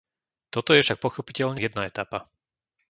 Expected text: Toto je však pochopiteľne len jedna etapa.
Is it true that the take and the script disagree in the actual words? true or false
true